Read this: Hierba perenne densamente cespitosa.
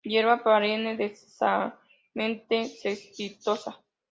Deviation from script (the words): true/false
false